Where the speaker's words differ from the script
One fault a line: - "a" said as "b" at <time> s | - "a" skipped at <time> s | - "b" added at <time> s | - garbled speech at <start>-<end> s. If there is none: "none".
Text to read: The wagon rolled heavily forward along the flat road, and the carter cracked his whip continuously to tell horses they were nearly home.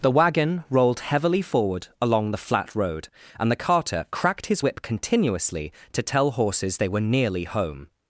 none